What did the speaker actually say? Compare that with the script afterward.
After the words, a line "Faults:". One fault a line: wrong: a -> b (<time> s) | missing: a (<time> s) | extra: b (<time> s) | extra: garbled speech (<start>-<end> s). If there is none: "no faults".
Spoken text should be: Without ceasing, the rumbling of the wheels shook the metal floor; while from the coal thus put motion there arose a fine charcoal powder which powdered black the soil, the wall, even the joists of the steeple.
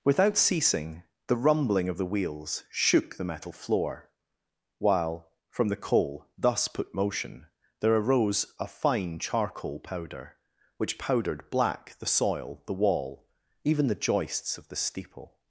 Without ceasing, the rumbling of the wheels shook the metal floor; while from the coal thus put motion there arose a fine charcoal powder which powdered black the soil, the wall, even the joists of the steeple.
Faults:
no faults